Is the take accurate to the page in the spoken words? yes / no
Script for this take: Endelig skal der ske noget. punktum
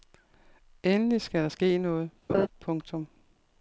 yes